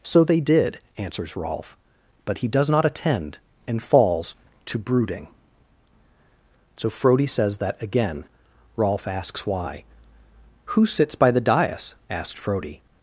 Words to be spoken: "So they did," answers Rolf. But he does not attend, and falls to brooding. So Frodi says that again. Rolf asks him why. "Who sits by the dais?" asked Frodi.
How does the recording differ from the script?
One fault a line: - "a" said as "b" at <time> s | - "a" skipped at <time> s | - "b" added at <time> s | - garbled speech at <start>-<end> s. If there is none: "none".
- "him" skipped at 9.4 s